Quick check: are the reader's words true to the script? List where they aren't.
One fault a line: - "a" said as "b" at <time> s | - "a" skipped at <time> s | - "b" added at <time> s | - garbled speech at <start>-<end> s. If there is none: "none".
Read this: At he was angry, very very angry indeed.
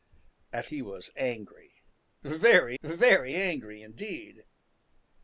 none